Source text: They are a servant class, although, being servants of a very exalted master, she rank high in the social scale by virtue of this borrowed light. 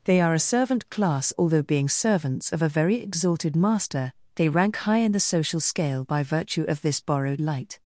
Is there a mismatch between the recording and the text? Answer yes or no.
yes